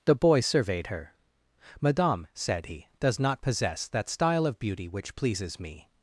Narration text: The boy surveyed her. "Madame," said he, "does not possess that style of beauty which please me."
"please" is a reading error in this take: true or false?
true